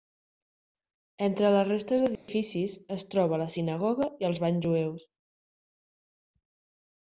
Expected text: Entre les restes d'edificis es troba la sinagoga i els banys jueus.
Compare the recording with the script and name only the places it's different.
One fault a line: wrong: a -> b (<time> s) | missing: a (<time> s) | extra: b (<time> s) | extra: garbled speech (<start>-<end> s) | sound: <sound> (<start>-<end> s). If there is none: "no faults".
sound: dropout (2.2-2.3 s)